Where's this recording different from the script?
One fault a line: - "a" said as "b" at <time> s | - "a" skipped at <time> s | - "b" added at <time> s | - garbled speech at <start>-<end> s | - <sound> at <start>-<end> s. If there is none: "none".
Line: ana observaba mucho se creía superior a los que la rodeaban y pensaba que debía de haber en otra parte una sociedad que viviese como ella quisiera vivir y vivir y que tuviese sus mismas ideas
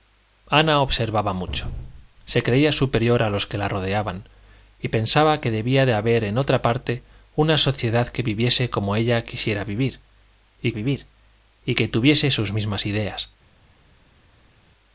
none